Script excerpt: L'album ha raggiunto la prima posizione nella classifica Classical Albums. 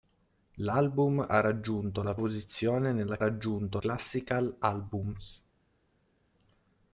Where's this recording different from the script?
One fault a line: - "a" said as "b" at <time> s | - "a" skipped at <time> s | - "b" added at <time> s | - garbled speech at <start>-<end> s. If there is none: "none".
- "prima" skipped at 2.1 s
- "classifica" said as "raggiunto" at 3.2 s